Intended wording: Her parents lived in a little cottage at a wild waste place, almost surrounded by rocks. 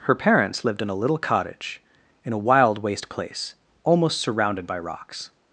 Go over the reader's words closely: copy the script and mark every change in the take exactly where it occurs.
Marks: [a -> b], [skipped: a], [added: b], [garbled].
Her parents lived in a little cottage [at -> in] a wild waste place, almost surrounded by rocks.